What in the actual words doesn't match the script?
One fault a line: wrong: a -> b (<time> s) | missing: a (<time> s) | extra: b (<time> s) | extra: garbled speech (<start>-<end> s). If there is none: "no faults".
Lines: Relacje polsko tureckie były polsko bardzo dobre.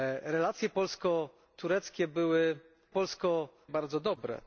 no faults